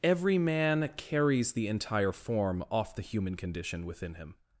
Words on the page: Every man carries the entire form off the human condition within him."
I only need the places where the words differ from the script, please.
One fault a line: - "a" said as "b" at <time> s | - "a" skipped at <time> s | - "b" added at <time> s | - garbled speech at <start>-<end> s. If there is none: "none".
none